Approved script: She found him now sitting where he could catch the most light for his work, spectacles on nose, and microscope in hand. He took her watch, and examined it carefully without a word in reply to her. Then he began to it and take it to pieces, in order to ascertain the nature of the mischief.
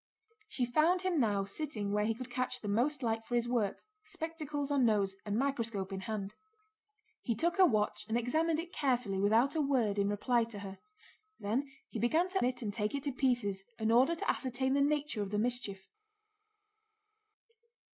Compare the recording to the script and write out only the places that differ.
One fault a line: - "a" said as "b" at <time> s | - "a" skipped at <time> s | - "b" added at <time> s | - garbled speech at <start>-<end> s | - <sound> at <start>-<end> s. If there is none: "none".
none